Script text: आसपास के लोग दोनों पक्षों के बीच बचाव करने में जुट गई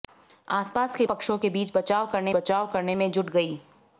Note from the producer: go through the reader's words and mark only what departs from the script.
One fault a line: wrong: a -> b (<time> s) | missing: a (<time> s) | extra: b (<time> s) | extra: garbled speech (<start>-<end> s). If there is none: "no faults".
missing: लोग दोनों (1.1 s)
extra: बचाव करने (2.4 s)